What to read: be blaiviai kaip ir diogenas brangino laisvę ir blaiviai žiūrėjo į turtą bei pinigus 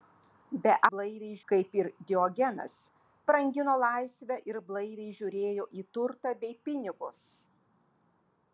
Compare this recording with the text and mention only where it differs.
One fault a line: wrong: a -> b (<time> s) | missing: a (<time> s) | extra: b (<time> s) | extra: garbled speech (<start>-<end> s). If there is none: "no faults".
no faults